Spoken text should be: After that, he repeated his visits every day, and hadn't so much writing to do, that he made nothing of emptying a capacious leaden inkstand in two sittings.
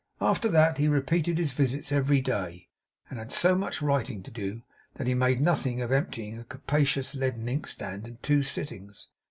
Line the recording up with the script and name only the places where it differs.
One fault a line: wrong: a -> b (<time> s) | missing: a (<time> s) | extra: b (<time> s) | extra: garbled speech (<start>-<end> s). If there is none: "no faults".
wrong: hadn't -> had (3.2 s)